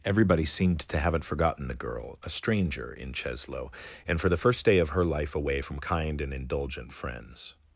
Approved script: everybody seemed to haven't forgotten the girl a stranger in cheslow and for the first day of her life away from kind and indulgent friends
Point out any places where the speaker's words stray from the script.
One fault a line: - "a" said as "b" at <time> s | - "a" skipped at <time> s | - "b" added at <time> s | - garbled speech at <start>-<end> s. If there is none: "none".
none